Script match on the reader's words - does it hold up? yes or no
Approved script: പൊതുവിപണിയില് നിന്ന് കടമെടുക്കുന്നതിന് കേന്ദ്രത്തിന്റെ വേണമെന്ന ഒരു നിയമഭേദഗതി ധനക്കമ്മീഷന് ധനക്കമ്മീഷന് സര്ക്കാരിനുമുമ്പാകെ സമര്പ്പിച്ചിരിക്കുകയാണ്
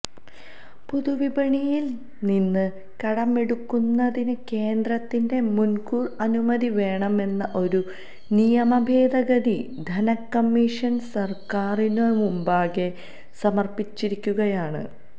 no